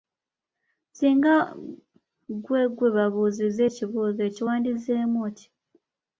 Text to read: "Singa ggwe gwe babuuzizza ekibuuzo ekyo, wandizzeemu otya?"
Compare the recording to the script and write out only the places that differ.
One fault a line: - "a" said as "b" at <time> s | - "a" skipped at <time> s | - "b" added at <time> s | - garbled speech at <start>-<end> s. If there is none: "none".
none